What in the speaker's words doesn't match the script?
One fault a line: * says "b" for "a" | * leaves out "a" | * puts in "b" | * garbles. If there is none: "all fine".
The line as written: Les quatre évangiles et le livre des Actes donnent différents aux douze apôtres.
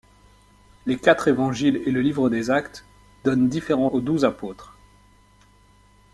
all fine